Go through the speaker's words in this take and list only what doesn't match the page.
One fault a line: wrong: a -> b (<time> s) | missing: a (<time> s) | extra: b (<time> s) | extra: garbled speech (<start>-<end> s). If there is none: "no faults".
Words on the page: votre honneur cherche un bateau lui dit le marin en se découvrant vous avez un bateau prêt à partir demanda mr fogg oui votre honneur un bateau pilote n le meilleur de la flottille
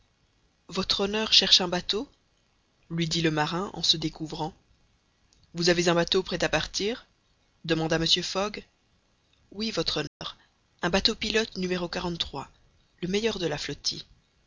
no faults